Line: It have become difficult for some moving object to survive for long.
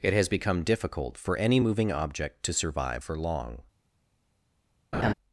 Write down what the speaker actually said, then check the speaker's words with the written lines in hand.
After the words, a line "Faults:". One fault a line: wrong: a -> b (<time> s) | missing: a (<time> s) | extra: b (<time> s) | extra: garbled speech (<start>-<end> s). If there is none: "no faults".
It has become difficult for any moving object to survive for long.
Faults:
wrong: have -> has (0.1 s)
wrong: some -> any (1.4 s)